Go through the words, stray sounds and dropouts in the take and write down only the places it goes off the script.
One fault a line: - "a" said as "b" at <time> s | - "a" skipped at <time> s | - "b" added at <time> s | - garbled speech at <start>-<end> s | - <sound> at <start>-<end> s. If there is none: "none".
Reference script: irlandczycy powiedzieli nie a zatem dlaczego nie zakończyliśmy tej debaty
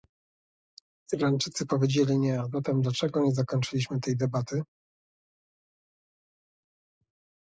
none